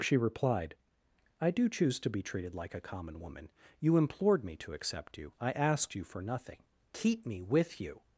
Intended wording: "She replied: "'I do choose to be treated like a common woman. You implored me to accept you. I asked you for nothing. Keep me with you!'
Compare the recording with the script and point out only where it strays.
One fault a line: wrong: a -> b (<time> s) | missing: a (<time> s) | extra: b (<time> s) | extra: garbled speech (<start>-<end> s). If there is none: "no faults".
no faults